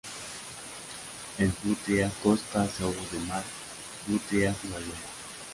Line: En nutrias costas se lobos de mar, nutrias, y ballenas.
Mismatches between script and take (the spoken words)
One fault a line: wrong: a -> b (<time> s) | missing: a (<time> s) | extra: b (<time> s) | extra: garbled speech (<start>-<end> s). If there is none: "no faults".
no faults